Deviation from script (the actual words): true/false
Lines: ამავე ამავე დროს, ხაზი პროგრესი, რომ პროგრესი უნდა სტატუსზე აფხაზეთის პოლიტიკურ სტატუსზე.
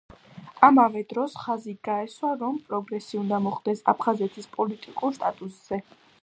true